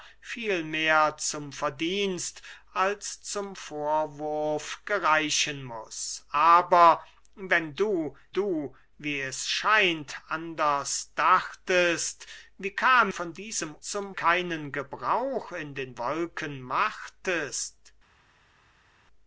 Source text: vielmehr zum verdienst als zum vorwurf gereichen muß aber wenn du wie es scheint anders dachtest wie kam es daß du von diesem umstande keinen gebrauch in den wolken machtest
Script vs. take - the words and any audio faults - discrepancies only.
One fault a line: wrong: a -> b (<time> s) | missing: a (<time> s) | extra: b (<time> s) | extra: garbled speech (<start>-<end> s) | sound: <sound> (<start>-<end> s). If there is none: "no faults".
extra: du (8.3 s)
missing: es daß du (13.1 s)
wrong: umstande -> zum (13.8 s)